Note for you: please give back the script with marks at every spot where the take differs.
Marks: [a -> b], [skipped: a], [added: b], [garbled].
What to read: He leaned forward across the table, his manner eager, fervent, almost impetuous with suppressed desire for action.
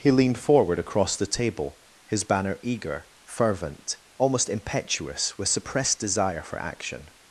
He leaned forward across the table, his [manner -> banner] eager, fervent, almost impetuous with suppressed desire for action.